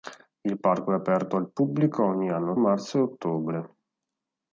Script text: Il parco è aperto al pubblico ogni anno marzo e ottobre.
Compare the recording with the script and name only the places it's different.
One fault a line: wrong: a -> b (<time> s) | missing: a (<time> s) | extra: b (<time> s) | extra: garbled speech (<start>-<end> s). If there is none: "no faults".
no faults